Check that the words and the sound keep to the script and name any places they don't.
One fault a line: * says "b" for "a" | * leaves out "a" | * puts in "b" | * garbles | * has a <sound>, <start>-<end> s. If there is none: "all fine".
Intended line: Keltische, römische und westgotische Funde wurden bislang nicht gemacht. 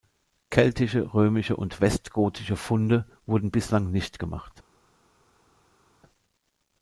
all fine